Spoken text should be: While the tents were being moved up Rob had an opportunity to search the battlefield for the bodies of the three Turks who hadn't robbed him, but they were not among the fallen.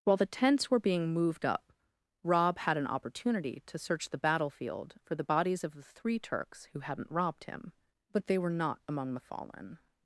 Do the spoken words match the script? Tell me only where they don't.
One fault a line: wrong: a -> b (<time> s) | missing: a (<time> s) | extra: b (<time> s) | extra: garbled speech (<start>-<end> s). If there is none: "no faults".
no faults